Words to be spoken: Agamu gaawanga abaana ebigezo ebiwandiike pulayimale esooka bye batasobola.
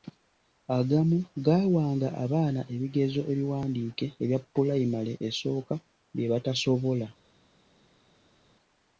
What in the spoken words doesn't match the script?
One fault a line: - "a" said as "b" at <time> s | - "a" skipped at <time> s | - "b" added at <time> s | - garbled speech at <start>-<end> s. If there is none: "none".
- "ebya" added at 4.2 s